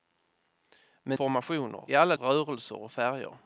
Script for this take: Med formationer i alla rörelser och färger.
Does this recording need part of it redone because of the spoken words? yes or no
no